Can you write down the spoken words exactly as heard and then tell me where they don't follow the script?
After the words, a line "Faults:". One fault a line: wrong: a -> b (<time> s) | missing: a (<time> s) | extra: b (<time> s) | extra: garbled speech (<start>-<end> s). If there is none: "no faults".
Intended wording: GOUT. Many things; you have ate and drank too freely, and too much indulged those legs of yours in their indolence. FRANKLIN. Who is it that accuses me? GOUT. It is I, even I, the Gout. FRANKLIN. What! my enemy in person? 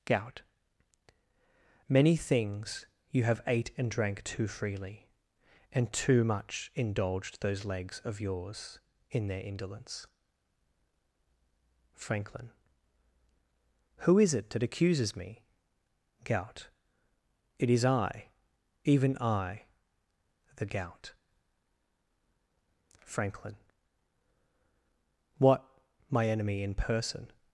GOUT. Many things; you have ate and drank too freely, and too much indulged those legs of yours in their indolence. FRANKLIN. Who is it that accuses me? GOUT. It is I, even I, the Gout. FRANKLIN. What! my enemy in person?
Faults:
no faults